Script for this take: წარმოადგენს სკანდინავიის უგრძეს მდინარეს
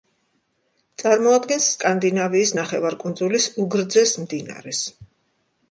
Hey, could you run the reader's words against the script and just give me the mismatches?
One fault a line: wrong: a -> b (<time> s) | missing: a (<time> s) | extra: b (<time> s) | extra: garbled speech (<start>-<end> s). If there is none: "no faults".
extra: ნახევარკუნძულის (2.6 s)